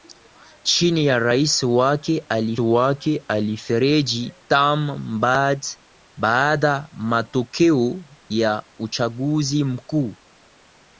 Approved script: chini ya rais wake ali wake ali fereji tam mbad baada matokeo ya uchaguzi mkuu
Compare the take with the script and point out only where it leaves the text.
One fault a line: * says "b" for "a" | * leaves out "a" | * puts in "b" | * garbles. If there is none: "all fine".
all fine